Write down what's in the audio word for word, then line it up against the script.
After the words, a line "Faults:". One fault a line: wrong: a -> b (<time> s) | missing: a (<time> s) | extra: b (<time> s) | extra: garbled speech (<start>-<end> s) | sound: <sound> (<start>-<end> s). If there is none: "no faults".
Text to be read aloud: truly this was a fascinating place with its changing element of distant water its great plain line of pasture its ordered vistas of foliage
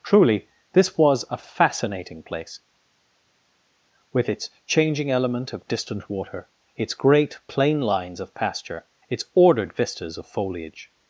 truly this was a fascinating place with its changing element of distant water its great plain lines of pasture its ordered vistas of foliage
Faults:
wrong: line -> lines (7.8 s)